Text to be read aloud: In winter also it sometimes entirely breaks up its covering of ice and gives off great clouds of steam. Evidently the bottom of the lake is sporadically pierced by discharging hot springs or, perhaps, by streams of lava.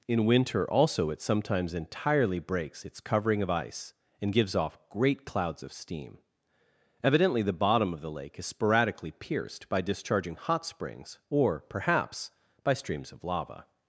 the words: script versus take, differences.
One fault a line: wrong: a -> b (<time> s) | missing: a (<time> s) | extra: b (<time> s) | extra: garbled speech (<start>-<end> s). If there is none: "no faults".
missing: up (2.9 s)